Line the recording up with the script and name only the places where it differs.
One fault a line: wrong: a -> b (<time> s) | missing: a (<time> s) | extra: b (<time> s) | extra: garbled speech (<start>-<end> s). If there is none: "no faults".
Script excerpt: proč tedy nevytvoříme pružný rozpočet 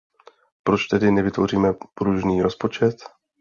no faults